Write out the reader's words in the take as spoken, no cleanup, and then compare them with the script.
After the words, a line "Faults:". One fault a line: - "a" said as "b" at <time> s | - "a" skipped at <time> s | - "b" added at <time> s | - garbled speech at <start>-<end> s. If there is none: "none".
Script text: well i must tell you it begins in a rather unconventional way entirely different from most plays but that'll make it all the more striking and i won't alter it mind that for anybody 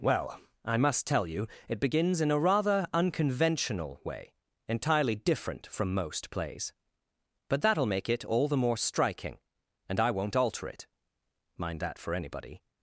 well i must tell you it begins in a rather unconventional way entirely different from most plays but that'll make it all the more striking and i won't alter it mind that for anybody
Faults:
none